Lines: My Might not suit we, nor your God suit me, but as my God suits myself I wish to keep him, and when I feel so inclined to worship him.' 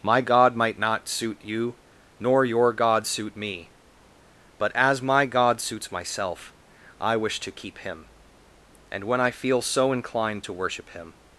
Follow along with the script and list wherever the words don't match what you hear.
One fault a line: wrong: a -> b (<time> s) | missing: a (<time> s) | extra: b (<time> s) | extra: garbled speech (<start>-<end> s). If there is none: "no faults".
extra: God (0.2 s)
wrong: we -> you (1.4 s)